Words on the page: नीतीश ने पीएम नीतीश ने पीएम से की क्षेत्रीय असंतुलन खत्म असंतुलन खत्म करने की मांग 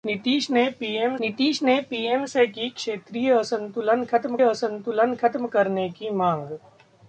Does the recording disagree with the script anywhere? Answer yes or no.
no